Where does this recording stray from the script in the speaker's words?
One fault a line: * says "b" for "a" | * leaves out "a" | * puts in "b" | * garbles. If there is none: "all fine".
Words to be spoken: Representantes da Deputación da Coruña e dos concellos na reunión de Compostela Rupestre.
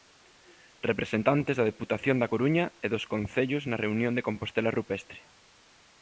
all fine